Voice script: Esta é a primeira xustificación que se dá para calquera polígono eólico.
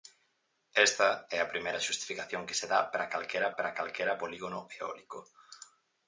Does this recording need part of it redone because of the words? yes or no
yes